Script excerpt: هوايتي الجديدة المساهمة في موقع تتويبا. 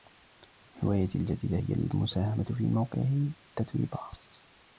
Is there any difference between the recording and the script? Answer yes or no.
yes